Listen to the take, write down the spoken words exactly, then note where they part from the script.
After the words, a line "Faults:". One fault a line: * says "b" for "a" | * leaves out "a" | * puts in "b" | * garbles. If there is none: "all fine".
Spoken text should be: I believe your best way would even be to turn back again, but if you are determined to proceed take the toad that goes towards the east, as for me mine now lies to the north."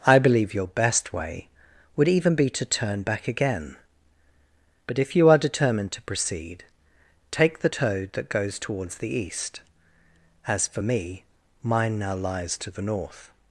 I believe your best way would even be to turn back again, but if you are determined to proceed take the toad that goes towards the east, as for me mine now lies to the north."
Faults:
all fine